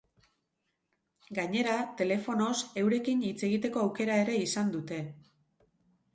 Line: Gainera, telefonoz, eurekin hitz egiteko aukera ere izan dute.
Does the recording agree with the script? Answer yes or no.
yes